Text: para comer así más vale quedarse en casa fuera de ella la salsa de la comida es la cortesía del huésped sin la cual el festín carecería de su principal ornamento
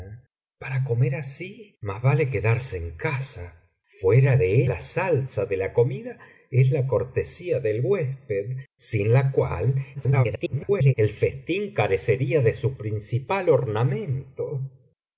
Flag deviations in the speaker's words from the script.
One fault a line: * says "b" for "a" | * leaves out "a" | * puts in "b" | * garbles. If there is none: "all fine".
* leaves out "ella"
* garbles